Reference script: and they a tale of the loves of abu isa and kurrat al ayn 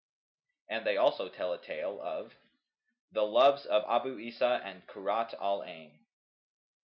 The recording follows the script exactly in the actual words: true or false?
false